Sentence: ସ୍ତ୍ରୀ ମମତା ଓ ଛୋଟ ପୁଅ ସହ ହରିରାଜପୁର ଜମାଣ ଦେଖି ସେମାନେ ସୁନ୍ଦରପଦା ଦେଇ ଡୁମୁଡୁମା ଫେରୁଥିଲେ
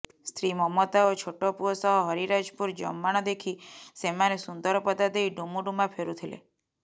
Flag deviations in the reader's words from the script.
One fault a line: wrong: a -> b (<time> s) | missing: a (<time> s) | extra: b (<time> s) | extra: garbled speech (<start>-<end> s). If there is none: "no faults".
no faults